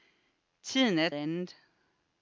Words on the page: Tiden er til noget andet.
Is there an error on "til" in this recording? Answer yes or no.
yes